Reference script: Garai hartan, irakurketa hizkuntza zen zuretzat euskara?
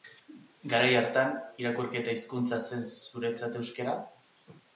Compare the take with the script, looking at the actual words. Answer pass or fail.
pass